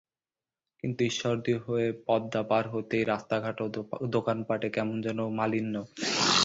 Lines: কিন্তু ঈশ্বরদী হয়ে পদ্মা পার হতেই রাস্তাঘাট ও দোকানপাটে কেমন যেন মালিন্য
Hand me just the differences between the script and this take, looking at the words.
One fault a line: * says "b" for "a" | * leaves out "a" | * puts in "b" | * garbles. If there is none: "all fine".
all fine